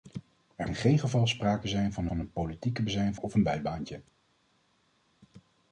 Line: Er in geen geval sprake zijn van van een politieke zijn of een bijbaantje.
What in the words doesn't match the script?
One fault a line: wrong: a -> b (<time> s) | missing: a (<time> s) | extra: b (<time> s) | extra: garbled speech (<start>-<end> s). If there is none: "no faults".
no faults